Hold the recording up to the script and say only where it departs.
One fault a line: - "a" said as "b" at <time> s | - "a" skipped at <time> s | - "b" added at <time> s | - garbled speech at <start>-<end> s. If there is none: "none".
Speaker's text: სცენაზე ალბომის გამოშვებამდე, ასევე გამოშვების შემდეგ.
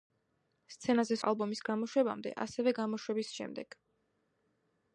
none